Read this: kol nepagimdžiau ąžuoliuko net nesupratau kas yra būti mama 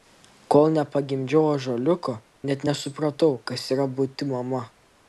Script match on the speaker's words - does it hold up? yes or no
yes